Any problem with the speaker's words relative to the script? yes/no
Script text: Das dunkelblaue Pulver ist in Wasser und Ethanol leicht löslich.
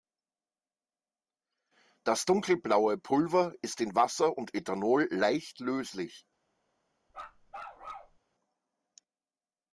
no